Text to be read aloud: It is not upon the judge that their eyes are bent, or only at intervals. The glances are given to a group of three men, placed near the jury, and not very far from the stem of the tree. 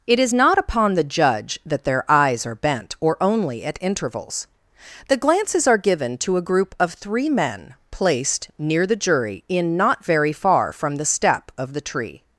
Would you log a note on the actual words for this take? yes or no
yes